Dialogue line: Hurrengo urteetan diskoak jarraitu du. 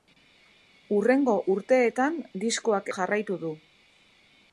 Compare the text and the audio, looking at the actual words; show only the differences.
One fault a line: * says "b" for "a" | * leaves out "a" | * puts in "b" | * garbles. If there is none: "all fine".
all fine